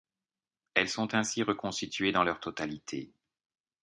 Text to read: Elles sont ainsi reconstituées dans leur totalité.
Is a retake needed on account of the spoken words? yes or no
no